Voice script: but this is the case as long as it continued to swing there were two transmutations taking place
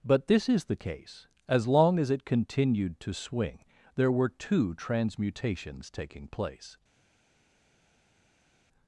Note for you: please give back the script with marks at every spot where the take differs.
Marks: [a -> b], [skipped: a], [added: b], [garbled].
but this is the case as long as it continued to swing there were two transmutations taking place